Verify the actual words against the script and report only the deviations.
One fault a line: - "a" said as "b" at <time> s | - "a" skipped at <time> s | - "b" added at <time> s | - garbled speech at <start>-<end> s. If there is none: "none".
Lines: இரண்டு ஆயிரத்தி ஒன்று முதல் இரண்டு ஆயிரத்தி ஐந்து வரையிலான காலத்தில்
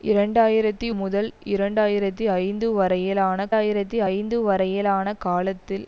- "ஒன்று" skipped at 0.9 s
- "ஆயிரத்தி ஐந்து வரையிலான" added at 3.6 s